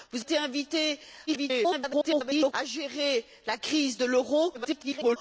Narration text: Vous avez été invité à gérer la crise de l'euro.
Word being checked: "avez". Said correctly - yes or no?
no